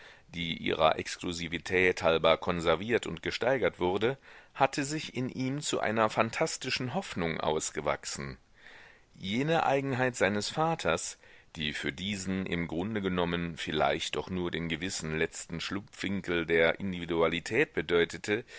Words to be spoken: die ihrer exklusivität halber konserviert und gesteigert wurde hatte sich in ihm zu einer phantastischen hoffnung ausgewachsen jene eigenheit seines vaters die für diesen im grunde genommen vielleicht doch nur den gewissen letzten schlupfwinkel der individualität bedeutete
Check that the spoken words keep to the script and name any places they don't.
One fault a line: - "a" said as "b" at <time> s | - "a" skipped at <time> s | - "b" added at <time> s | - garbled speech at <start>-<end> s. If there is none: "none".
none